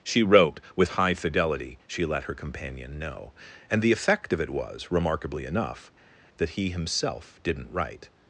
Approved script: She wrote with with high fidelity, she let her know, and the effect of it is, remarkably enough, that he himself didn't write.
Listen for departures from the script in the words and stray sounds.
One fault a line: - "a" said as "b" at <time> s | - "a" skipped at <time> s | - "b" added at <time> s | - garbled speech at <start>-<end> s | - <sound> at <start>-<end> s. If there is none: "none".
- "with" skipped at 0.9 s
- "companion" added at 2.3 s
- "is" said as "was" at 4.5 s